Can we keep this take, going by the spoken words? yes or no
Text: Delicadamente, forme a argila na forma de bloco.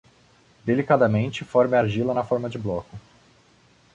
yes